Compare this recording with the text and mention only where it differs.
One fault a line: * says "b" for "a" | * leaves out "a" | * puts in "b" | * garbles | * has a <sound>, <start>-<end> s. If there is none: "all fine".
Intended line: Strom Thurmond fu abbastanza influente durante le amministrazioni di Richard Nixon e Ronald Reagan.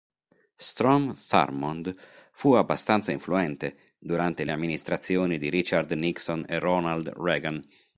all fine